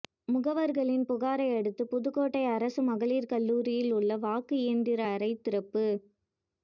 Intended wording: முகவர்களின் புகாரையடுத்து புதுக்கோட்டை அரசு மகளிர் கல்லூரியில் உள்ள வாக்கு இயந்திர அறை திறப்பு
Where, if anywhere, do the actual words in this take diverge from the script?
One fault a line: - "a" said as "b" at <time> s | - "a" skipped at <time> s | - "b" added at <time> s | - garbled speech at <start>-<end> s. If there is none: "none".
none